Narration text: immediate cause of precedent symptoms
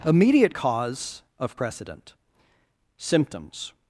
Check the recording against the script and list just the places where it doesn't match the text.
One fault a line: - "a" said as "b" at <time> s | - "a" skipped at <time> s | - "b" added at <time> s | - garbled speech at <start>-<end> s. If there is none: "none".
none